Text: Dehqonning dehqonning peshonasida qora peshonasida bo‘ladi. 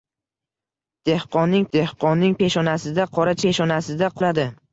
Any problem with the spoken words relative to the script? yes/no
no